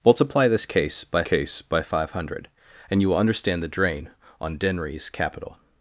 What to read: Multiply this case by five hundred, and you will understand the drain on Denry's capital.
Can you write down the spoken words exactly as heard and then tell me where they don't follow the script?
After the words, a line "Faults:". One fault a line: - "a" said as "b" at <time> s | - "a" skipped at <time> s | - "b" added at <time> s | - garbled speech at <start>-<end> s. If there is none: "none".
Multiply this case by case by five hundred, and you will understand the drain on Denry's capital.
Faults:
- "case by" added at 1.2 s